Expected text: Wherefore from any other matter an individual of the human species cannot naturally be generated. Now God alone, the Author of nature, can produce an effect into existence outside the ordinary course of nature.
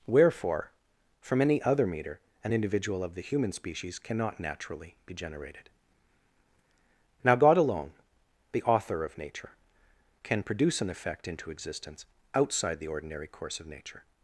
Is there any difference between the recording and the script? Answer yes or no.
yes